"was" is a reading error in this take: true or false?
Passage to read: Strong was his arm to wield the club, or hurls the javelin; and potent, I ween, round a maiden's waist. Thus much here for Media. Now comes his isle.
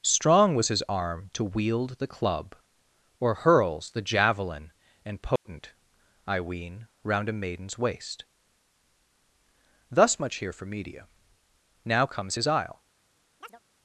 false